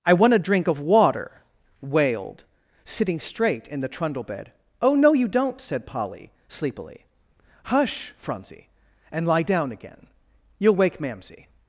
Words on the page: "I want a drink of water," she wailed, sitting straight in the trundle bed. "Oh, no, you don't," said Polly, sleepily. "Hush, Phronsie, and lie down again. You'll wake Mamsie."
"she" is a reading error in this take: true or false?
true